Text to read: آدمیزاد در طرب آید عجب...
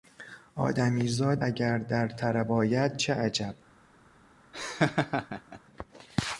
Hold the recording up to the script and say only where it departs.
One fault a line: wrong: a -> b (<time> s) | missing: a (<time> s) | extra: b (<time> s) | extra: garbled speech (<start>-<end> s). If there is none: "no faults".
extra: اگر (1.4 s)
extra: چه (3.0 s)